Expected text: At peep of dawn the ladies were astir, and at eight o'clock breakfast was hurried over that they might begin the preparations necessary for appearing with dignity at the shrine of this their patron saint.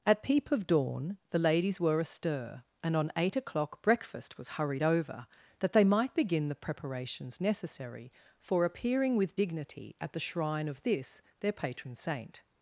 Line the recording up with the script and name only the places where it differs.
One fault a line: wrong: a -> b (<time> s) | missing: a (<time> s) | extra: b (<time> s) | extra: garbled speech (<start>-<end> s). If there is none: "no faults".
wrong: at -> on (3.0 s)